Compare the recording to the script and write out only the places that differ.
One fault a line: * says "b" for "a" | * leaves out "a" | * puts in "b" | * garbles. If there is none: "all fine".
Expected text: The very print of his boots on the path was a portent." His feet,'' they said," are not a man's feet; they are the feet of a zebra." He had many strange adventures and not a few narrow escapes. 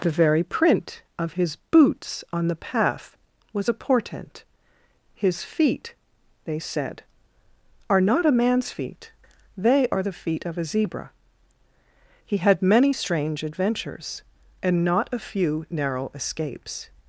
all fine